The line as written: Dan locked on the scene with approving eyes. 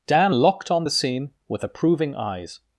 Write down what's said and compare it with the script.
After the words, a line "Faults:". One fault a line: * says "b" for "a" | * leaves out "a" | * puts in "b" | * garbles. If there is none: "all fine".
Dan locked on the scene with approving eyes.
Faults:
all fine